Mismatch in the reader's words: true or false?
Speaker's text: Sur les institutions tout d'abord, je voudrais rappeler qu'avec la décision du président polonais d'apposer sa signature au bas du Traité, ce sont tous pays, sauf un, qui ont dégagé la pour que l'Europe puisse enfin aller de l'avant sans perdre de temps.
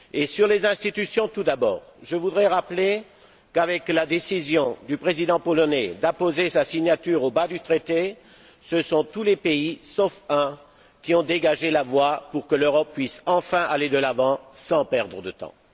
true